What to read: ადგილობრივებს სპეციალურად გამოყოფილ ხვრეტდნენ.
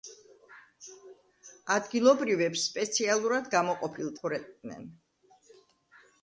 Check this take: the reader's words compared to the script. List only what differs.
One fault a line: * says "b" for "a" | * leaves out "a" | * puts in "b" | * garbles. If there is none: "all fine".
all fine